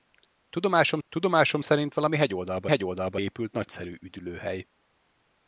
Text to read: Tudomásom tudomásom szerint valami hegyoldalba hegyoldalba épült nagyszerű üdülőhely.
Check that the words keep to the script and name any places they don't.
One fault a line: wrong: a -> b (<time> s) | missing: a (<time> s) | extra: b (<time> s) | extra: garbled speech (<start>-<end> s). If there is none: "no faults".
no faults